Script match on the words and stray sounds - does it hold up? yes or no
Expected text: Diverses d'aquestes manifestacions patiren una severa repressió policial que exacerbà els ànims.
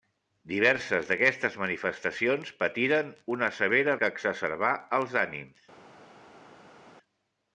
no